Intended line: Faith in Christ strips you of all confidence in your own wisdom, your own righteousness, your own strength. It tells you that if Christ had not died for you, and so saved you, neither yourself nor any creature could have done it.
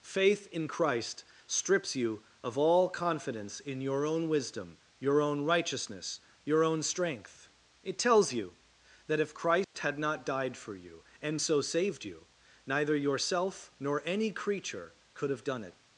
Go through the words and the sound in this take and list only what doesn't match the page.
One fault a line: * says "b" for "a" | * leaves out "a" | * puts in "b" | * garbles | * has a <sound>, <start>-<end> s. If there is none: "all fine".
* has a dropout, 9.6-9.7 s